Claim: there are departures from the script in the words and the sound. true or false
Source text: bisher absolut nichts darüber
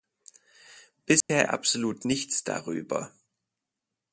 true